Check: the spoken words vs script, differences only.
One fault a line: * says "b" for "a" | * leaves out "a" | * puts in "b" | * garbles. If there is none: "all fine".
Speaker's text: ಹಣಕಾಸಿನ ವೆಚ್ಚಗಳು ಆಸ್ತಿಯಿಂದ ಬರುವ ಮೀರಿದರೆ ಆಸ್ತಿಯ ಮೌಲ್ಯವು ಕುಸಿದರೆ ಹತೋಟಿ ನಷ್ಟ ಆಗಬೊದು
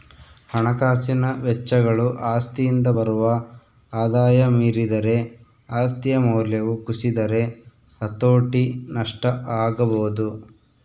* puts in "ಆದಾಯ"